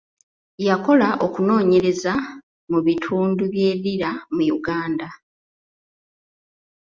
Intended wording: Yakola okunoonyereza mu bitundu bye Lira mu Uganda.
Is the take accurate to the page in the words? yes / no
yes